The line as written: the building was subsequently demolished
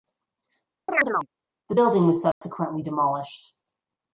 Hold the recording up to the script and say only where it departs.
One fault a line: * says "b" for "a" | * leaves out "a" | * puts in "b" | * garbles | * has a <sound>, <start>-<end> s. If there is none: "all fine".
* has a chirp, 0.9-1.3 s
* has a dropout, 2.3-2.4 s